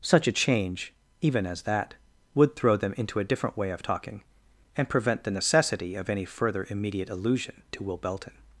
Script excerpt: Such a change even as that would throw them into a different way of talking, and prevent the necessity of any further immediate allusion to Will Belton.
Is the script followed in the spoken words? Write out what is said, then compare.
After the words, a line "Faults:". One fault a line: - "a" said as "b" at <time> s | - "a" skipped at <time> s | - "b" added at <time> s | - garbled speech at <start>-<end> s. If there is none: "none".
Such a change even as that would throw them into a different way of talking, and prevent the necessity of any further immediate allusion to Will Belton.
Faults:
none